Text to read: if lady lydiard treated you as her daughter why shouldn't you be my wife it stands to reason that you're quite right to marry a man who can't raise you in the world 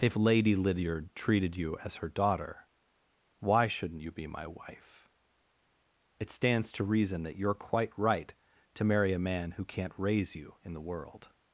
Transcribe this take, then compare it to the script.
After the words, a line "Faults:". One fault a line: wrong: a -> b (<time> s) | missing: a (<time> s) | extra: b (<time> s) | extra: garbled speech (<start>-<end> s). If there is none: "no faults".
if lady lydiard treated you as her daughter why shouldn't you be my wife it stands to reason that you're quite right to marry a man who can't raise you in the world
Faults:
no faults